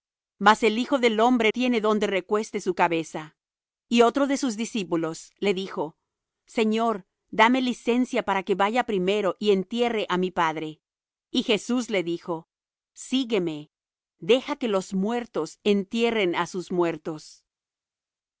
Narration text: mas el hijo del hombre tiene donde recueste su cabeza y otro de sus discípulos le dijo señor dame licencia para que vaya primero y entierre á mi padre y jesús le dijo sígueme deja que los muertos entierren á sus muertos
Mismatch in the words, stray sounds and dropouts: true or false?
false